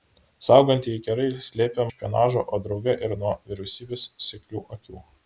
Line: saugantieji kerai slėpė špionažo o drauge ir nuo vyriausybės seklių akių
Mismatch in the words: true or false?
false